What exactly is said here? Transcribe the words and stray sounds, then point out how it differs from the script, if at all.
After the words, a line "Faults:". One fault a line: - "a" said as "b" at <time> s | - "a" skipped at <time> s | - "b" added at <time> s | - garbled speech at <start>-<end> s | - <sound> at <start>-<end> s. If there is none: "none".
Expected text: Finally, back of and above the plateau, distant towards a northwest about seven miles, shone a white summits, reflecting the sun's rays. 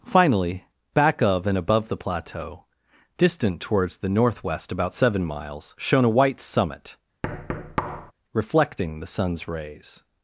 Finally, back of and above the plateau, distant towards the northwest about seven miles, shone a white summit, reflecting the sun's rays.
Faults:
- "a" said as "the" at 4.0 s
- "summits" said as "summit" at 6.4 s
- thud at 7.2-8.1 s